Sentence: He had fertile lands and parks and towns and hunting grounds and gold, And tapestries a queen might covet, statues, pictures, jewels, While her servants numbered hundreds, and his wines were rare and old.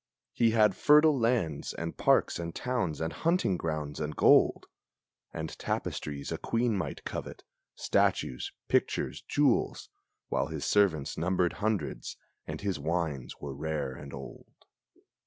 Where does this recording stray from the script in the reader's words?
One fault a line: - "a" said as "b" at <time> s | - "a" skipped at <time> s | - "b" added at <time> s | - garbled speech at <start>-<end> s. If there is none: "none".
- "her" said as "his" at 10.5 s